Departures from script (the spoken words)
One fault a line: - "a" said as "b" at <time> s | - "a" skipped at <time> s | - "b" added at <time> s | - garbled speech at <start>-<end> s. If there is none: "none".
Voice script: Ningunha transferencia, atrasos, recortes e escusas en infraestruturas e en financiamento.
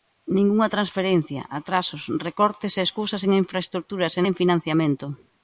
none